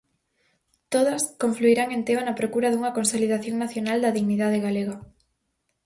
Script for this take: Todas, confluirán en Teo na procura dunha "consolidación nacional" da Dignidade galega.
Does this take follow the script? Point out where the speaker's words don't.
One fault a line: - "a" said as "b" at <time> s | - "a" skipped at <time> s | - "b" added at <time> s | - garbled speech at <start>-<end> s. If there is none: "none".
none